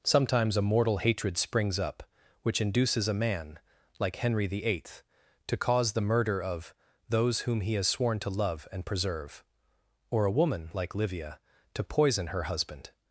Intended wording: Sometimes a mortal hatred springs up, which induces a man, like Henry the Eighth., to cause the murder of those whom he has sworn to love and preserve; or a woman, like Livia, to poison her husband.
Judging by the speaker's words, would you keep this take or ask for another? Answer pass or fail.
pass